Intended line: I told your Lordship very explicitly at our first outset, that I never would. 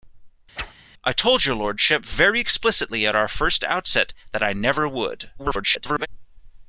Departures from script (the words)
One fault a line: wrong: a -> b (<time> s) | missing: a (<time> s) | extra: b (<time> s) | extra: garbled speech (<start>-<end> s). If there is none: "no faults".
extra: garbled speech (5.4-6.1 s)